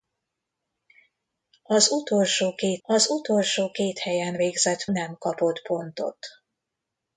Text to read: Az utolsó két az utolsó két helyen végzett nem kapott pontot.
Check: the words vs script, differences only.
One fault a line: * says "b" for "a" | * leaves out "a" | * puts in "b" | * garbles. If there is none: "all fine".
all fine